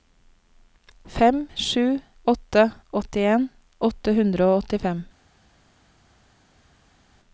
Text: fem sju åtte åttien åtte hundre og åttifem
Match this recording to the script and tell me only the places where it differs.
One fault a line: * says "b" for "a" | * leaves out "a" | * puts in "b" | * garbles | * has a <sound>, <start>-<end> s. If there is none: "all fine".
all fine